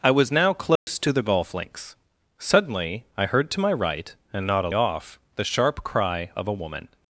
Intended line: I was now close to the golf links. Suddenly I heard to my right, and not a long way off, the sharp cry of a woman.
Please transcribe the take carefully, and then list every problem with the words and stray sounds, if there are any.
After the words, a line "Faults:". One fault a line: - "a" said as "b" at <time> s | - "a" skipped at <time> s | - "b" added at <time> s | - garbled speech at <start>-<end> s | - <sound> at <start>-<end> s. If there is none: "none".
I was now close to the golf links. Suddenly I heard to my right, and not a off, the sharp cry of a woman.
Faults:
- dropout at 0.8-0.9 s
- "long way" skipped at 4.7 s